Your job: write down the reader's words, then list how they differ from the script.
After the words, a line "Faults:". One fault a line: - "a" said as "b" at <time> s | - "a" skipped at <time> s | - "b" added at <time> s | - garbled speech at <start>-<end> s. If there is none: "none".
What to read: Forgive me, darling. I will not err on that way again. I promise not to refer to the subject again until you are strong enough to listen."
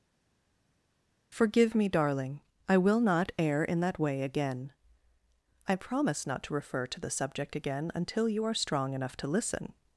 Forgive me, darling. I will not err in that way again. I promise not to refer to the subject again until you are strong enough to listen."
Faults:
- "on" said as "in" at 3.6 s